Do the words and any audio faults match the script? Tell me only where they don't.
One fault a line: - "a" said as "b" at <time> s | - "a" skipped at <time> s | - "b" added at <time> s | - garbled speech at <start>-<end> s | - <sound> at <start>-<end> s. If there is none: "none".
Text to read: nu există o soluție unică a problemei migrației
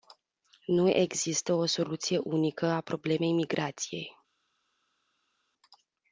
none